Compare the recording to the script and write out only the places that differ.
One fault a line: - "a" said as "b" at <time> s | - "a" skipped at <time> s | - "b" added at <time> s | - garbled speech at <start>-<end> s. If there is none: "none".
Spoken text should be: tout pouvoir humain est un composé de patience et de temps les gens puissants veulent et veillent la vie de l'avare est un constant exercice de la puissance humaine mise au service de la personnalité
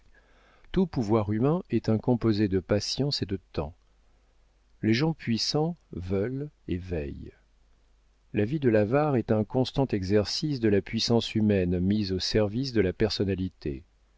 none